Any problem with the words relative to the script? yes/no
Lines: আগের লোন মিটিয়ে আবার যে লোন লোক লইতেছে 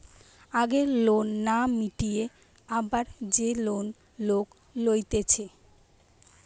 yes